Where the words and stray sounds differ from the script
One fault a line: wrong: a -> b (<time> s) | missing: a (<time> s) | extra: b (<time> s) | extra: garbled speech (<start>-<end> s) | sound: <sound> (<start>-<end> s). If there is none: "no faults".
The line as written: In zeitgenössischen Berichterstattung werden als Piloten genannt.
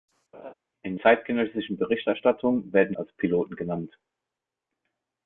sound: laugh (0.3-0.5 s)